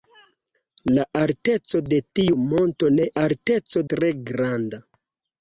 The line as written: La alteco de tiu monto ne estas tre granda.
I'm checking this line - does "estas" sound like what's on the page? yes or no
no